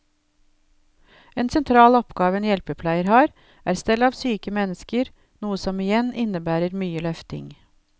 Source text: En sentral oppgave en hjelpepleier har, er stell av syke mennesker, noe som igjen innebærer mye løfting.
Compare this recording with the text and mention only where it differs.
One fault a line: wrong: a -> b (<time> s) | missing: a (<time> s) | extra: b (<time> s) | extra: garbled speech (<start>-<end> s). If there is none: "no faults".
no faults